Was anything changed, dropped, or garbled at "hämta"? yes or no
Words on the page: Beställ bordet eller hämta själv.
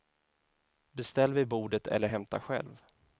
no